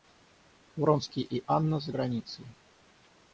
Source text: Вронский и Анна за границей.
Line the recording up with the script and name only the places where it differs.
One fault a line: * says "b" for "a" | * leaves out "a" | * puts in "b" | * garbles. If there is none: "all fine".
all fine